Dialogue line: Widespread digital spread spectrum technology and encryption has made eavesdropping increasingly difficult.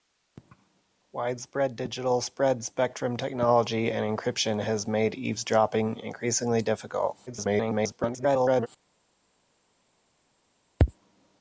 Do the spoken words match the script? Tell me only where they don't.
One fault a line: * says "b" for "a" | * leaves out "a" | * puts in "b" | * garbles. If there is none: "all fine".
* garbles